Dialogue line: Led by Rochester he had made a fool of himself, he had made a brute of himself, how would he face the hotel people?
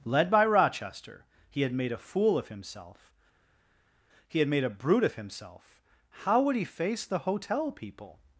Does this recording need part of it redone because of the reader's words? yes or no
no